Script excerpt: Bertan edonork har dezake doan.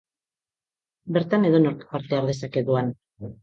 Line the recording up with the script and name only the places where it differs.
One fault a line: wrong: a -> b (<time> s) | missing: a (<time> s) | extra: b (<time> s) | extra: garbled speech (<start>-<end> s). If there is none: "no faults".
extra: parte (1.9 s)